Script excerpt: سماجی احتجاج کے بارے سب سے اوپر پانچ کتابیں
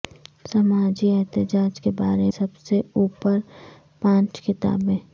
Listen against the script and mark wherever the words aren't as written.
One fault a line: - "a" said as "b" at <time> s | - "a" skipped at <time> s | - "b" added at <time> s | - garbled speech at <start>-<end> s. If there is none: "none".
none